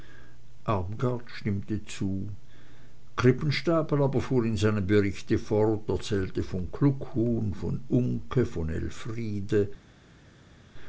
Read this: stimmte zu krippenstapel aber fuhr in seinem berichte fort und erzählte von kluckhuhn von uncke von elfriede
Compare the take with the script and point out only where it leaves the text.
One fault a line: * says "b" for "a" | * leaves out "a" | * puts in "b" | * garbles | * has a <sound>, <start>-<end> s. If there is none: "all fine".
* leaves out "und"